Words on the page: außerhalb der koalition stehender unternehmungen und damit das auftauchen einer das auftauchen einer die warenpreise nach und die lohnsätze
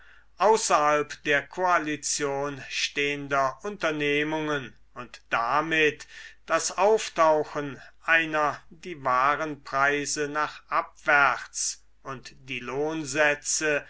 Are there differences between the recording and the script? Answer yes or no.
yes